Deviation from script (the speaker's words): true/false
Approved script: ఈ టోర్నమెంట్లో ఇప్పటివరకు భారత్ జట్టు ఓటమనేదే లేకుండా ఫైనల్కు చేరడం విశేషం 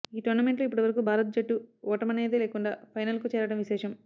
false